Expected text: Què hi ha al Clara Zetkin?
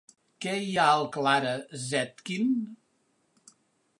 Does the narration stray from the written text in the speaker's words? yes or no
no